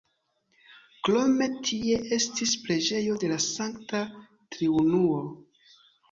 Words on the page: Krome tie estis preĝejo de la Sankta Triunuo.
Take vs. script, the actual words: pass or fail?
pass